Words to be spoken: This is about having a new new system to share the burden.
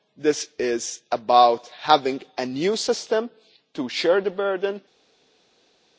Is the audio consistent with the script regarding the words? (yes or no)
no